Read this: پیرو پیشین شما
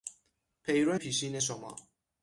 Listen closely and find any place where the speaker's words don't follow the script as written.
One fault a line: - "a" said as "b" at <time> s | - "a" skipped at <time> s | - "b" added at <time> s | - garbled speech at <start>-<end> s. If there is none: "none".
none